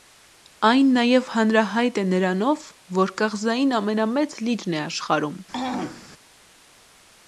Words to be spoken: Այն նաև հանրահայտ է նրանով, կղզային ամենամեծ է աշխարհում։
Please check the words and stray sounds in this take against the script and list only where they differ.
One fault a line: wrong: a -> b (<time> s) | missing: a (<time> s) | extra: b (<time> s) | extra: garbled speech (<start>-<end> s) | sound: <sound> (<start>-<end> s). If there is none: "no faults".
extra: որ (3.0 s)
extra: լիճն (4.5 s)
sound: throat clearing (5.5-6.1 s)